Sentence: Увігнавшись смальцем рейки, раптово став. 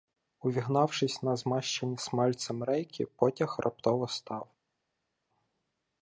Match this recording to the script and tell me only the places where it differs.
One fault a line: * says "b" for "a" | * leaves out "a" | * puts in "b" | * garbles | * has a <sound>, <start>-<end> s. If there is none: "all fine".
* puts in "на змащені"
* puts in "потяг"